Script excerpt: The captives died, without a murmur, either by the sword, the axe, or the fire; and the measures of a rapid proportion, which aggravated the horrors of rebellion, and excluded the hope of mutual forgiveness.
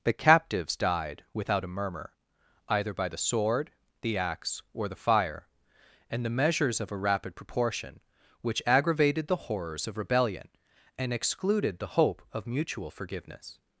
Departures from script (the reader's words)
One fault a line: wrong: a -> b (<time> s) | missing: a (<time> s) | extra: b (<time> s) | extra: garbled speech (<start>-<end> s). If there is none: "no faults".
no faults